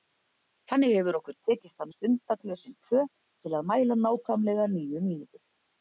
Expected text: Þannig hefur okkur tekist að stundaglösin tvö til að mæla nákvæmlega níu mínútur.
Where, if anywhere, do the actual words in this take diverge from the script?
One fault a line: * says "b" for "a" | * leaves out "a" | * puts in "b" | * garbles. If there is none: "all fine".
all fine